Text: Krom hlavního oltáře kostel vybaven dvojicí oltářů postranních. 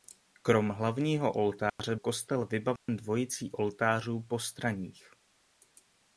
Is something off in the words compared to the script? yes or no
no